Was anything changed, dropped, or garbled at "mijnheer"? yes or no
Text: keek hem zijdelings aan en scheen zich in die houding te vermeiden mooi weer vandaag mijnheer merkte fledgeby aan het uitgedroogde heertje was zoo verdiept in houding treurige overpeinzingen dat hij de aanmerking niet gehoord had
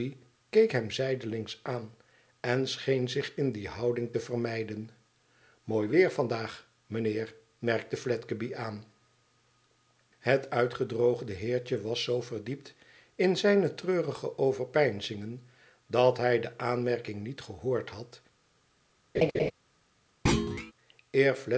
no